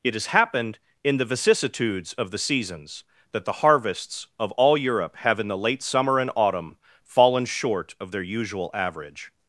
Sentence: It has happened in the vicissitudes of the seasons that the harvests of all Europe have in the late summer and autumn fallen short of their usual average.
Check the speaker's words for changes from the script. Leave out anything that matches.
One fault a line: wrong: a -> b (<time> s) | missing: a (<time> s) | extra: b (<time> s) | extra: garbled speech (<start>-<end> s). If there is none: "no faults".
no faults